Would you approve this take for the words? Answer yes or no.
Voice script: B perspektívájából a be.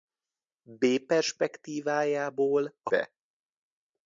yes